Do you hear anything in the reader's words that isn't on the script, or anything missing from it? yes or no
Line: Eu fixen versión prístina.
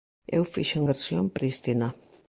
no